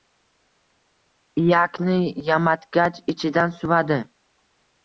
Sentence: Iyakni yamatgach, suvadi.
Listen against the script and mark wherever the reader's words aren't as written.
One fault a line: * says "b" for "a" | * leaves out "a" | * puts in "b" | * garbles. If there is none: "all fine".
* puts in "ichidan"